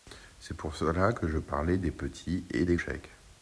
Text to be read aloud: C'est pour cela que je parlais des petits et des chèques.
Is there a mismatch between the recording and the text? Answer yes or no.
no